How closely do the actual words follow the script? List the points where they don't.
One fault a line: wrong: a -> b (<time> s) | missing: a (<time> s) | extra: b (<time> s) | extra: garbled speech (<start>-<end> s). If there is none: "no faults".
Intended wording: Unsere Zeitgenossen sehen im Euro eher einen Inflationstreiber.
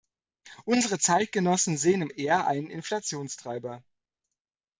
missing: Euro (2.1 s)